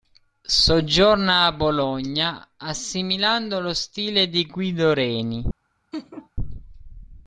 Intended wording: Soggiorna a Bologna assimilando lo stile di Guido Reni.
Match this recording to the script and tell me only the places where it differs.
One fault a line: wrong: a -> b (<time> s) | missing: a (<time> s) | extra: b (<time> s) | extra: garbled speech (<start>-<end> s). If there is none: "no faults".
no faults